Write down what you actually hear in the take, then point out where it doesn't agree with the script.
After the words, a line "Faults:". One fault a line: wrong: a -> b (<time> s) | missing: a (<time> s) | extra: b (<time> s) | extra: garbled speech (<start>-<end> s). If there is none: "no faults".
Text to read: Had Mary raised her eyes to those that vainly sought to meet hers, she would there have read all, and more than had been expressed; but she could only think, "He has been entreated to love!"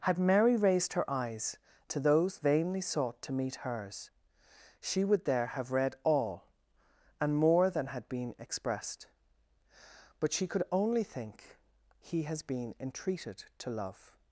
Had Mary raised her eyes to those vainly sought to meet hers, she would there have read all, and more than had been expressed; but she could only think, "He has been entreated to love!"
Faults:
missing: that (2.4 s)